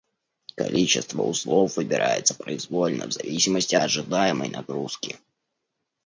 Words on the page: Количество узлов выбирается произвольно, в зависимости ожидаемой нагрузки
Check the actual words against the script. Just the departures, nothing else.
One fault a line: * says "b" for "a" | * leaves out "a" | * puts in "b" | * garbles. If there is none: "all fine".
all fine